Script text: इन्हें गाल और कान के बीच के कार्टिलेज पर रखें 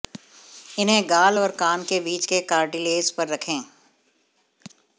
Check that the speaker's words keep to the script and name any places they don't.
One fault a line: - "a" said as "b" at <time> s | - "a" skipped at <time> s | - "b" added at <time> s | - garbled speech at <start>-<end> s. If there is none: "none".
none